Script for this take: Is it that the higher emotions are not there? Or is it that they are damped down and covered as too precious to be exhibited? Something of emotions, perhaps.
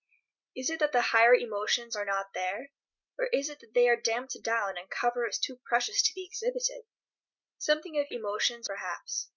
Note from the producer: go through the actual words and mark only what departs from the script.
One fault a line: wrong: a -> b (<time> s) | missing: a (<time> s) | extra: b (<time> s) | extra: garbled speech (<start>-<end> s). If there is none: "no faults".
no faults